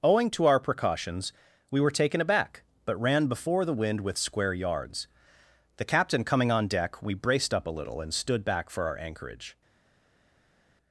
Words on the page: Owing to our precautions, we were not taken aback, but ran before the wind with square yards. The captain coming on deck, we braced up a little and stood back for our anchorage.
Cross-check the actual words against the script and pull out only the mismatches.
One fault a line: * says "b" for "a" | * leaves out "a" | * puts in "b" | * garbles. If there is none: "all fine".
* leaves out "not"